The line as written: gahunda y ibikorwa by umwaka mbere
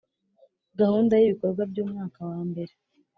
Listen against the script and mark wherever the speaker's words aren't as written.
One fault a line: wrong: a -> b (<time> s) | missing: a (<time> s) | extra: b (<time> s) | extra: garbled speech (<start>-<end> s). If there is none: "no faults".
extra: wa (2.3 s)